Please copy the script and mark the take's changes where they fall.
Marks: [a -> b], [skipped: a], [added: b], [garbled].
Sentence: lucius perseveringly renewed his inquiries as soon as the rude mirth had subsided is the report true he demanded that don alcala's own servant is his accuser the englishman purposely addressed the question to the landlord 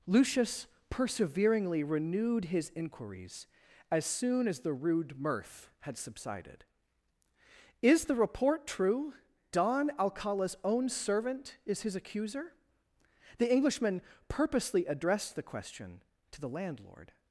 lucius perseveringly renewed his inquiries as soon as the rude mirth had subsided is the report true [skipped: he demanded that] don alcala's own servant is his accuser the englishman purposely addressed the question to the landlord